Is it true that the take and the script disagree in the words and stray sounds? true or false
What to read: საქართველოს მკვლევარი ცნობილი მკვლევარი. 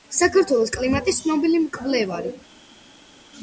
true